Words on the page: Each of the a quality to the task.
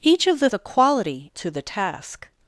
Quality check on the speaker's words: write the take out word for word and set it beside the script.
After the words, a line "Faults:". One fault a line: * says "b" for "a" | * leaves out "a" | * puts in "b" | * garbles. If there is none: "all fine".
Each of the a quality to the task.
Faults:
all fine